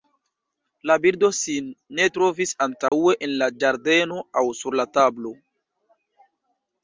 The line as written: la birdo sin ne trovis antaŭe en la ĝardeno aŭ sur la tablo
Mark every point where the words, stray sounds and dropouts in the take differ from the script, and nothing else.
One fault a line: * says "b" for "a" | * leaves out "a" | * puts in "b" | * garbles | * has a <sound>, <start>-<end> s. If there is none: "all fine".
* has a dropout, 2.9-2.9 s